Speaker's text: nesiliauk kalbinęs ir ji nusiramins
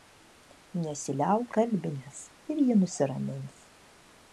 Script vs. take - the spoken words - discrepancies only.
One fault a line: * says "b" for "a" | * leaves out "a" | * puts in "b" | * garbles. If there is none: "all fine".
all fine